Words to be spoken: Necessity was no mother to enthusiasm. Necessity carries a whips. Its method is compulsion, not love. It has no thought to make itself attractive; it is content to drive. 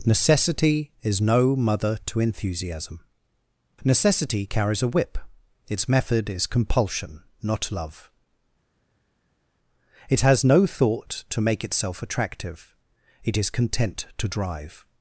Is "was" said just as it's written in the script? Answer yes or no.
no